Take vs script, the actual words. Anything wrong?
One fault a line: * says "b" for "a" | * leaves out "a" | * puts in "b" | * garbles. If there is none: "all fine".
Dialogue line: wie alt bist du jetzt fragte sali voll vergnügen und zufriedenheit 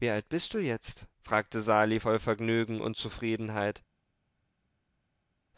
all fine